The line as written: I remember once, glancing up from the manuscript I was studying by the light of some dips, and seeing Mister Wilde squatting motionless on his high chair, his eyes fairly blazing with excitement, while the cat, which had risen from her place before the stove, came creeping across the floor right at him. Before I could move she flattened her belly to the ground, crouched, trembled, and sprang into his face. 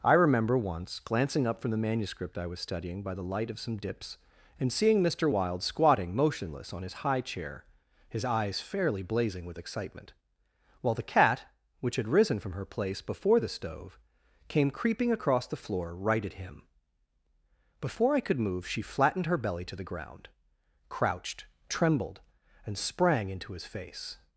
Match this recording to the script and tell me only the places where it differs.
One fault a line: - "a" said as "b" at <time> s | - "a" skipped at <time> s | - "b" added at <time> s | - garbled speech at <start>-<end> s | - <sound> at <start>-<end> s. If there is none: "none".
none